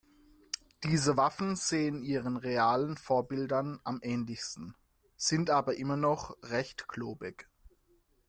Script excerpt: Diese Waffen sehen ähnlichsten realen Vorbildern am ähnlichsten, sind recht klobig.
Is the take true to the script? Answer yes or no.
no